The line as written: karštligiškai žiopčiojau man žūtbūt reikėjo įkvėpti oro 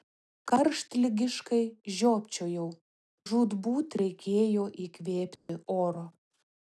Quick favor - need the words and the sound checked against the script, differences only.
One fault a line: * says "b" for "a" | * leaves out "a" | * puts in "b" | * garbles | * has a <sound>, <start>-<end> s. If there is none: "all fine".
* leaves out "man"
* has a dropout, 5.4-5.5 s